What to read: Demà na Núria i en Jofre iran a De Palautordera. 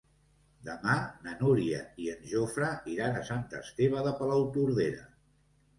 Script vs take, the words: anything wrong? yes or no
yes